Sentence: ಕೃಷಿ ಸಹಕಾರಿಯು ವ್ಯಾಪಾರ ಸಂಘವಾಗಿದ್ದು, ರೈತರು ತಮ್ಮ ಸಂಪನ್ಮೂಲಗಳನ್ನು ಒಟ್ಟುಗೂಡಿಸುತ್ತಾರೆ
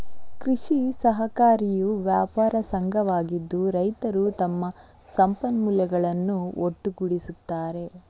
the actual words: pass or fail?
pass